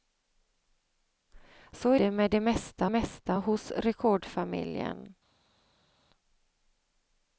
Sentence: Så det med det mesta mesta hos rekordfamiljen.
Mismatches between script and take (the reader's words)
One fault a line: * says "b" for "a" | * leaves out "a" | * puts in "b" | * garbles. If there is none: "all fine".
all fine